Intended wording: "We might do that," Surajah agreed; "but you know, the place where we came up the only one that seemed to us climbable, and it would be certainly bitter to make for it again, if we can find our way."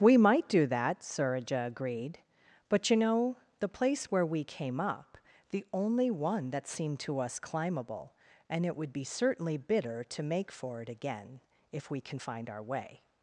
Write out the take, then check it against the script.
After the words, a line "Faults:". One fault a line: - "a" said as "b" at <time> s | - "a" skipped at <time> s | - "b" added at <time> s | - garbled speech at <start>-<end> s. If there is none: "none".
"We might do that," Surajah agreed; "but you know, the place where we came up the only one that seemed to us climbable, and it would be certainly bitter to make for it again, if we can find our way."
Faults:
none